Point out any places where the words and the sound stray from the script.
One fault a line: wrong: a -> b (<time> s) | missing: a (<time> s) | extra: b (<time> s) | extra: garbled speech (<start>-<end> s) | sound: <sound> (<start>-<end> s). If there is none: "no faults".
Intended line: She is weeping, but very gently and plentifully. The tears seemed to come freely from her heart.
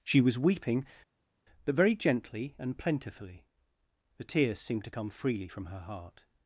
wrong: is -> was (0.2 s)